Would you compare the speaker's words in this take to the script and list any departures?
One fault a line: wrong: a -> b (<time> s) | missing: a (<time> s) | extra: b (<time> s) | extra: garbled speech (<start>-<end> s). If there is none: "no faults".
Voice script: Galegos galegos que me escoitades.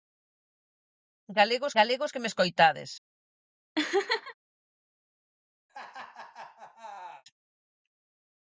no faults